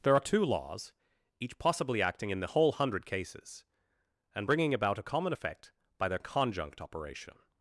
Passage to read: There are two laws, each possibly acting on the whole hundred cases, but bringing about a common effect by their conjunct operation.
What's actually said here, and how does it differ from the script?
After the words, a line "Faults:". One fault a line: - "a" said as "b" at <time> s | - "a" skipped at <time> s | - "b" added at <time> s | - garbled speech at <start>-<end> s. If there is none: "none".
There are two laws, each possibly acting in the whole hundred cases, and bringing about a common effect by their conjunct operation.
Faults:
- "on" said as "in" at 2.3 s
- "but" said as "and" at 4.3 s